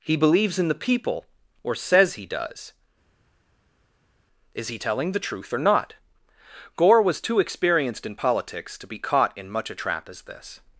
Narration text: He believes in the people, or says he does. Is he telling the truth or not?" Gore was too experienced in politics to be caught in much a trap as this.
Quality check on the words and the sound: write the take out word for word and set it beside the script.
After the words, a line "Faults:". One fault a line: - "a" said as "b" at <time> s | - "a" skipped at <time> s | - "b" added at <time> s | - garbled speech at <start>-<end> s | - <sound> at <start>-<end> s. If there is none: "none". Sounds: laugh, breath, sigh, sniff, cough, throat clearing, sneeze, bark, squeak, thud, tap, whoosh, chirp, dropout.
He believes in the people, or says he does. Is he telling the truth or not?" Gore was too experienced in politics to be caught in much a trap as this.
Faults:
none